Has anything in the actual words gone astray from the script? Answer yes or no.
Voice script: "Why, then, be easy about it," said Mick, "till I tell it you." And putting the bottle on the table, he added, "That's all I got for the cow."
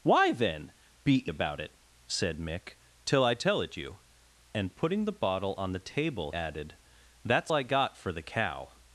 yes